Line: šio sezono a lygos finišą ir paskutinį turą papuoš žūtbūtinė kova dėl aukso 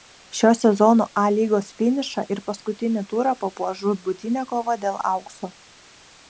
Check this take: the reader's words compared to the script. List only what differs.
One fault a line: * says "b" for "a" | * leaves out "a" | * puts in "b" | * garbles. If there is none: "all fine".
all fine